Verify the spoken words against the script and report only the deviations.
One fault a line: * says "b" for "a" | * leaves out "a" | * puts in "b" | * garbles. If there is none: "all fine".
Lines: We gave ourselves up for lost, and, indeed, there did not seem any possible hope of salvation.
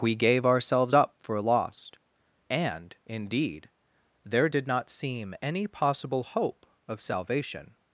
all fine